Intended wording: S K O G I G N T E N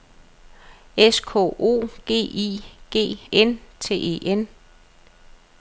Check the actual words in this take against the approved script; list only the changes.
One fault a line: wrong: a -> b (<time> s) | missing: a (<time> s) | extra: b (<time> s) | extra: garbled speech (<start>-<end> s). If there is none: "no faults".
no faults